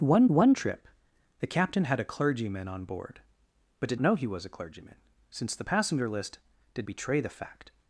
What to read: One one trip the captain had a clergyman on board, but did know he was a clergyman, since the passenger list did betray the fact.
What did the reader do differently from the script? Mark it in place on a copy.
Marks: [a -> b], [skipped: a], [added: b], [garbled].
One one trip the captain had a clergyman on board, but did know he was a clergyman, since the passenger list did betray the fact.